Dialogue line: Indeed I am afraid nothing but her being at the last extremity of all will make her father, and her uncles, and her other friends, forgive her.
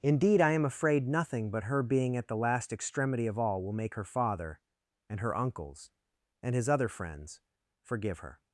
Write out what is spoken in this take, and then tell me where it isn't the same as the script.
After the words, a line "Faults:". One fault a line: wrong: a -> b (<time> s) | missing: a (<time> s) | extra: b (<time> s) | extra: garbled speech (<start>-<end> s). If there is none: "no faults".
Indeed I am afraid nothing but her being at the last extremity of all will make her father, and her uncles, and his other friends, forgive her.
Faults:
wrong: her -> his (6.6 s)